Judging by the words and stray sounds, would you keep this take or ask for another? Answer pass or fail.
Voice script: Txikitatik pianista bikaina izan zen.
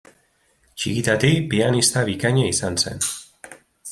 pass